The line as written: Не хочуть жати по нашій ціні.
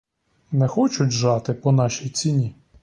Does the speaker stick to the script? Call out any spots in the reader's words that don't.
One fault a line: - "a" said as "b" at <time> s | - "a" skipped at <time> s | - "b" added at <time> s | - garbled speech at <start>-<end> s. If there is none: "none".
none